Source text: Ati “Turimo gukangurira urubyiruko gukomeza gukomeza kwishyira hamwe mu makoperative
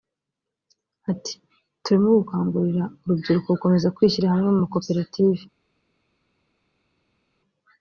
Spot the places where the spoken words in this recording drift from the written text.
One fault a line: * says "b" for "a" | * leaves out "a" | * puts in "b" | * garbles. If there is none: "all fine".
* leaves out "gukomeza"